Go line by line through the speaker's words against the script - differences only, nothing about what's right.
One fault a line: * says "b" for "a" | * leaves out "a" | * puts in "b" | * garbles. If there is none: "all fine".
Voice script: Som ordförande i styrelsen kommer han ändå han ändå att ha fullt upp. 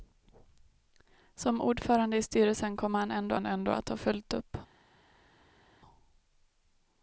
all fine